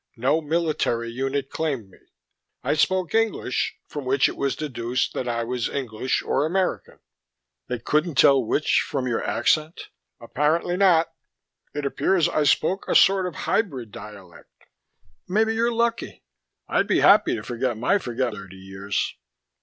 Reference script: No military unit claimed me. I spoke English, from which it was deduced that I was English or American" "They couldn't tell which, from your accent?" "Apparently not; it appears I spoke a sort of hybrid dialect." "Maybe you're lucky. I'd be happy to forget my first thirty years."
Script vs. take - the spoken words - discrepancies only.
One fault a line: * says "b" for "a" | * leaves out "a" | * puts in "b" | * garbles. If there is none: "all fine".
* says "forget" for "first"